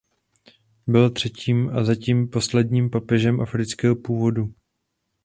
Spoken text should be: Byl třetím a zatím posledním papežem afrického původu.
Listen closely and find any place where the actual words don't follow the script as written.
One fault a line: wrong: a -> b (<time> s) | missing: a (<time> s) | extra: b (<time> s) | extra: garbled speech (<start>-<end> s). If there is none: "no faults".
no faults